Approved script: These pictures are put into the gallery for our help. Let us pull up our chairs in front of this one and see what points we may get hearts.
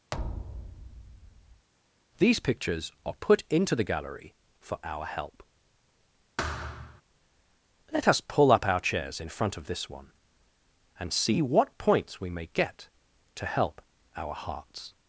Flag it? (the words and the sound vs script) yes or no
yes